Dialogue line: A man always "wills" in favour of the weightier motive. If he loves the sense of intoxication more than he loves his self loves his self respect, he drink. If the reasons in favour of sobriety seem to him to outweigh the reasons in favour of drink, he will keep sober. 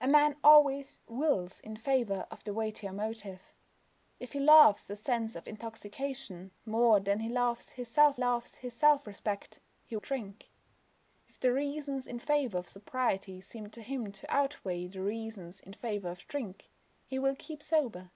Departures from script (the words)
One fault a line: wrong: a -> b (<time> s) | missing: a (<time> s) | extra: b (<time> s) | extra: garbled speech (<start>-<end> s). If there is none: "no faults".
no faults